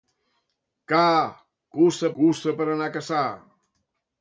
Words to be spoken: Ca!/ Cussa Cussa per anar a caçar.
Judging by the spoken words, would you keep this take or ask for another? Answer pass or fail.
pass